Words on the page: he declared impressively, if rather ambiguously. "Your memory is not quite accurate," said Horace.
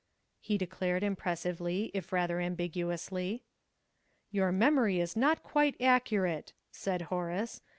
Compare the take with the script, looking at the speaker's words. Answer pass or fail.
pass